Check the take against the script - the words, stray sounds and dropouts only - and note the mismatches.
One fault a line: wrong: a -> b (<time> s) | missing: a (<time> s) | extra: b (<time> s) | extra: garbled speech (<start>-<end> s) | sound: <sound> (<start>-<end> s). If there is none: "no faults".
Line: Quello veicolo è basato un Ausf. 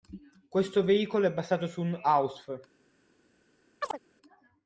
wrong: Quello -> Questo (0.5 s)
extra: su (1.7 s)
sound: chirp (3.8-4.0 s)